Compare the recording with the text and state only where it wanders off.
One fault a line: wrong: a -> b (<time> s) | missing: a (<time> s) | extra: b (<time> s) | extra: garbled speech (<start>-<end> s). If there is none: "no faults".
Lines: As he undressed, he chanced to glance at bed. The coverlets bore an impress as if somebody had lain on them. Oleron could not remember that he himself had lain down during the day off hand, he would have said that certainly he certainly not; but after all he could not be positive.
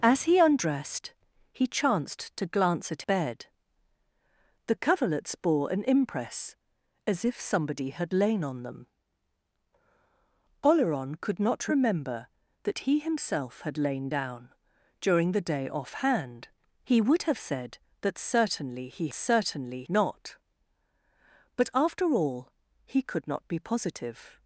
no faults